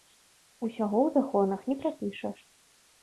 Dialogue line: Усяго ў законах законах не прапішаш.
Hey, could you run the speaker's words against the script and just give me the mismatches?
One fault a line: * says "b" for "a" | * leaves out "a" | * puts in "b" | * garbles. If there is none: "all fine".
* leaves out "законах"